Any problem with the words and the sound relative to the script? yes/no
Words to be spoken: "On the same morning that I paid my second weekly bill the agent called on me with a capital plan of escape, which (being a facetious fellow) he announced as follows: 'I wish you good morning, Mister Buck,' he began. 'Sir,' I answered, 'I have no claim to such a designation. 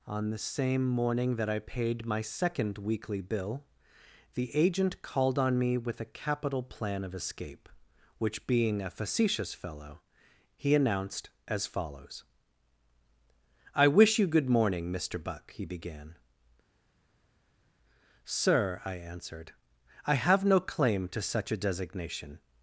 no